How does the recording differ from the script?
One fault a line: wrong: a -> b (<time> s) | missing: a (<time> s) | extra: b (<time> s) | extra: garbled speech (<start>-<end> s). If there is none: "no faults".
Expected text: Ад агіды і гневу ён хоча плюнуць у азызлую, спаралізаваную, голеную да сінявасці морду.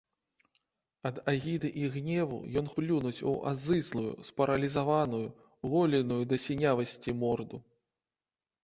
missing: хоча (2.7 s)